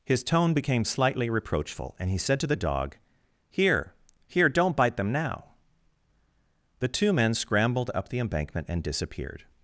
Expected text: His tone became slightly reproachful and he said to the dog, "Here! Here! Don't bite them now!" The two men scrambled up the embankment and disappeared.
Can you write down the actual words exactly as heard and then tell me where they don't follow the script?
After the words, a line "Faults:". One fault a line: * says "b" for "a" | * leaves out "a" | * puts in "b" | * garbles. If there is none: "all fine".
His tone became slightly reproachful and he said to the dog, "Here! Here! Don't bite them now!" The two men scrambled up the embankment and disappeared.
Faults:
all fine